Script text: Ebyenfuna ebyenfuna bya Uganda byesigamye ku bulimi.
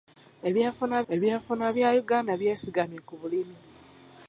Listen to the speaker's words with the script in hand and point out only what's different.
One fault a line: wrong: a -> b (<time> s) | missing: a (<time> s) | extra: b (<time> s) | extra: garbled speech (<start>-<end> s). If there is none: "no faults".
no faults